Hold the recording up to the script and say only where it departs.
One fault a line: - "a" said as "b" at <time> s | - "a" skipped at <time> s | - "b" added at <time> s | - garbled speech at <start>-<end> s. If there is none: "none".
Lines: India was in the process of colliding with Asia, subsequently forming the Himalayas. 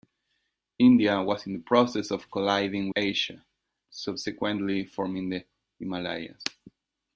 - "with" skipped at 2.9 s